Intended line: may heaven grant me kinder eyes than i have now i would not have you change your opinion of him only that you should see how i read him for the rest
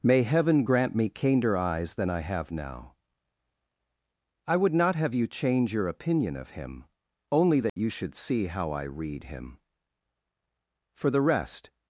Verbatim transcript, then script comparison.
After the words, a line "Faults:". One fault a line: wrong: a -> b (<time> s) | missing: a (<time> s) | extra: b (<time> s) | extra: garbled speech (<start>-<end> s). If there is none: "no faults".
may heaven grant me kinder eyes than i have now i would not have you change your opinion of him only that you should see how i read him for the rest
Faults:
no faults